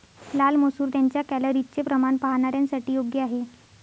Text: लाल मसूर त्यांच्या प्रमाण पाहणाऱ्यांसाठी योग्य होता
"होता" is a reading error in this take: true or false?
true